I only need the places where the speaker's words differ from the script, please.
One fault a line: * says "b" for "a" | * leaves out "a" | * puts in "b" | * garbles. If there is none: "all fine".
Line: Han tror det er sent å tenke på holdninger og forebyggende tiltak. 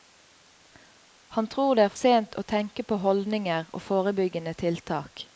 all fine